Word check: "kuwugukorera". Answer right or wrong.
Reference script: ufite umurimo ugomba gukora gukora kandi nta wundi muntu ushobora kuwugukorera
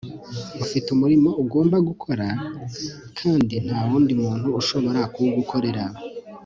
right